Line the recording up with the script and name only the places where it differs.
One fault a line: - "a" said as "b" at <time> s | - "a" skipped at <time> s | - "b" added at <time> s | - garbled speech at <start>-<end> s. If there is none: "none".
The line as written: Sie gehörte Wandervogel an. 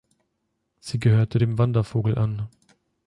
- "dem" added at 1.4 s